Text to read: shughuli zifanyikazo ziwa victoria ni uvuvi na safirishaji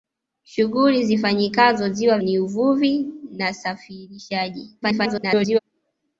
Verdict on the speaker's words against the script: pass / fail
fail